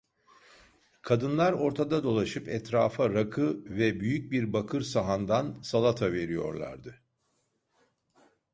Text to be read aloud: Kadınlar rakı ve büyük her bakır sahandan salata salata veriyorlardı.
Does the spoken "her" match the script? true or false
false